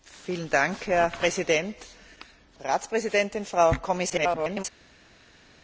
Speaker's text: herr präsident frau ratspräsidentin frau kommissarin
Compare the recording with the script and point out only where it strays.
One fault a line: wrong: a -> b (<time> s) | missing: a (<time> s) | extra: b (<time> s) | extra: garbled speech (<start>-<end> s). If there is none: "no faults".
missing: frau (1.8 s)
extra: garbled speech (4.1-4.6 s)